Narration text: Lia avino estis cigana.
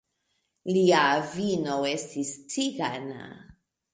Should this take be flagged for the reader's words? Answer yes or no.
no